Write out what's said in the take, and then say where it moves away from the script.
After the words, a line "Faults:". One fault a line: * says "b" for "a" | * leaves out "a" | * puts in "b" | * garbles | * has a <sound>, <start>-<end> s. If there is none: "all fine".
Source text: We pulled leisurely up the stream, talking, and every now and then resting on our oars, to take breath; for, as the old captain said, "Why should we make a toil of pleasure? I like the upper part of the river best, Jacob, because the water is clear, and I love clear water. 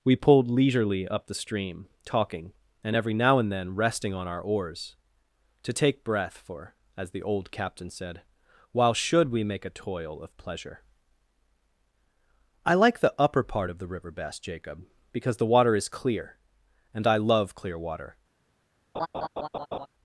We pulled leisurely up the stream, talking, and every now and then resting on our oars, to take breath; for, as the old captain said, "While should we make a toil of pleasure? I like the upper part of the river best, Jacob, because the water is clear, and I love clear water.
Faults:
* says "While" for "Why"
* has a laugh, 18.9-19.9 s